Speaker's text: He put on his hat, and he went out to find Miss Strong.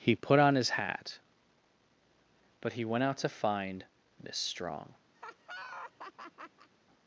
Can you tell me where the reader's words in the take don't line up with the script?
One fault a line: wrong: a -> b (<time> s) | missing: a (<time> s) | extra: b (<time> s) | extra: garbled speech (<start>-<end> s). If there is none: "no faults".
wrong: and -> but (2.6 s)